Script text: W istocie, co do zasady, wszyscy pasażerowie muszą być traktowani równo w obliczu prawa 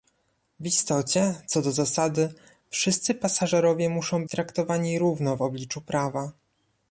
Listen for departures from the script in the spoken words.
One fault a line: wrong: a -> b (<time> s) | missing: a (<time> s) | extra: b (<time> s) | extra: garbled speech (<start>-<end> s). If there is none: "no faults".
missing: być (4.2 s)